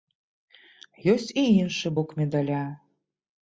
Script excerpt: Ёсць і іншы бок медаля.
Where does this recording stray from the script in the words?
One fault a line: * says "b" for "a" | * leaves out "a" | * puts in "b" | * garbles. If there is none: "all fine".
all fine